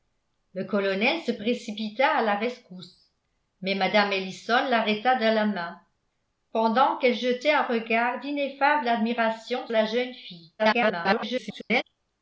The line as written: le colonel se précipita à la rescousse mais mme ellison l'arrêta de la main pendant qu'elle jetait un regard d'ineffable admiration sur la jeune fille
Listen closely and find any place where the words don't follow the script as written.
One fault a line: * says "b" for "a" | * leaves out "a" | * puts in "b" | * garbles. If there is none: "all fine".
* leaves out "sur"
* garbles